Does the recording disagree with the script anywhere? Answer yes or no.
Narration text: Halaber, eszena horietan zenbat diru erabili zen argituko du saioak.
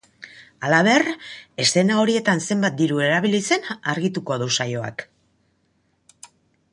no